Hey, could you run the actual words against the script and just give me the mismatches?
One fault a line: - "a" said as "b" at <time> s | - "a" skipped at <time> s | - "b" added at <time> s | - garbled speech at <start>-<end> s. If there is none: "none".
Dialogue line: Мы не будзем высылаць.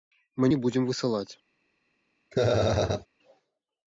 none